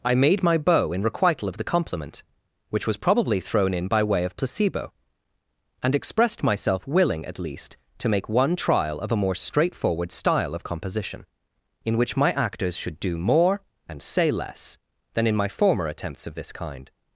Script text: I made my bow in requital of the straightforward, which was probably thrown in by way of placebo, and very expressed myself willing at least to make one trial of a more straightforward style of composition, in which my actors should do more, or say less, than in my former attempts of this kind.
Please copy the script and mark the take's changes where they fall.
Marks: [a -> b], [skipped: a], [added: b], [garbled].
I made my bow in requital of the [straightforward, -> compliment] which was probably thrown in by way of placebo, and [skipped: very] expressed myself willing at least to make one trial of a more straightforward style of composition, in which my actors should do more, [or -> and] say less, than in my former attempts of this kind.